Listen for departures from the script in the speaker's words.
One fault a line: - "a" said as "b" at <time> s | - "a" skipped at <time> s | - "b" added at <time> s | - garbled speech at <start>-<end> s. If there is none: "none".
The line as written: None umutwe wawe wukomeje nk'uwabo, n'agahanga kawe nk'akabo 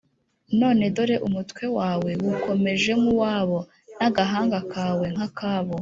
- "dore" added at 1.0 s